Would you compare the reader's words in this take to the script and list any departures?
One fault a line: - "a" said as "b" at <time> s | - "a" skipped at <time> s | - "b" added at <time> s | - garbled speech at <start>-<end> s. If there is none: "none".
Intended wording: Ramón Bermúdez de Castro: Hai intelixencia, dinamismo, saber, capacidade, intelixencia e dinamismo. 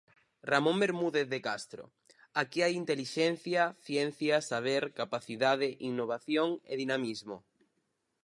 - "Aquí" added at 2.4 s
- "dinamismo" said as "ciencia" at 3.8 s
- "intelixencia" said as "innovación" at 5.9 s